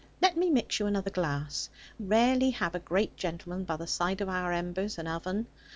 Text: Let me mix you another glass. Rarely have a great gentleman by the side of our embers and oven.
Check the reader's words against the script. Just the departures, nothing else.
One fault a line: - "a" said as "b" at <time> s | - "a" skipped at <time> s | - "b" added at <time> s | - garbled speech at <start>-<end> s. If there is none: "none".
none